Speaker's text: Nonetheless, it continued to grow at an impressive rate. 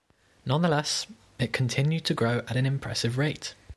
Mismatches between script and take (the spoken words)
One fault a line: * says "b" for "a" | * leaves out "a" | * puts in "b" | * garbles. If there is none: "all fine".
all fine